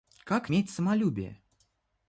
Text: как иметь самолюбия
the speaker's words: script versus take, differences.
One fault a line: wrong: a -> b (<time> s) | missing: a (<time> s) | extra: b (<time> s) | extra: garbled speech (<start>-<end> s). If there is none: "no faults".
no faults